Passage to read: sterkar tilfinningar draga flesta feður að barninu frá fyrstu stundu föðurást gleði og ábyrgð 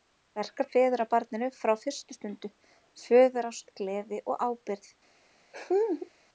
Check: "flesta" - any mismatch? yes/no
yes